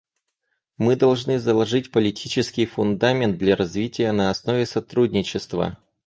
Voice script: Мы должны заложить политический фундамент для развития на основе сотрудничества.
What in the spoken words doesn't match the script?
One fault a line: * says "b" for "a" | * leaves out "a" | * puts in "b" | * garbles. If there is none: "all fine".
all fine